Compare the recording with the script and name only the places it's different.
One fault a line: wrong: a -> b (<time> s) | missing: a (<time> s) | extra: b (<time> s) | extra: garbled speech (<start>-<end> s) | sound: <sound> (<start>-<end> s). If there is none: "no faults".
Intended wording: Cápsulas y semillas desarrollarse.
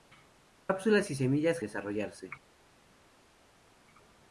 no faults